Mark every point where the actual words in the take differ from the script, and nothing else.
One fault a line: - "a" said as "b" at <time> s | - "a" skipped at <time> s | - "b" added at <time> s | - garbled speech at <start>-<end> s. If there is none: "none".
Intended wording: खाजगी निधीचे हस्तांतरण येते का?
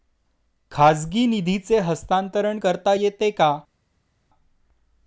- "करता" added at 2.5 s